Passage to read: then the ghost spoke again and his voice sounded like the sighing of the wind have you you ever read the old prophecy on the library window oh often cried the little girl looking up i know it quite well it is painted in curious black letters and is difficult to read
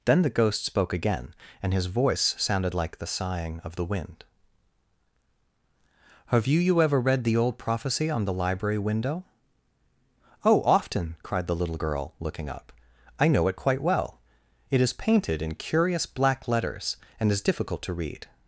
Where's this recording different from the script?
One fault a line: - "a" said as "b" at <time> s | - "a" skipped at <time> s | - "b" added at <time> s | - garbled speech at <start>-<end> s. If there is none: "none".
none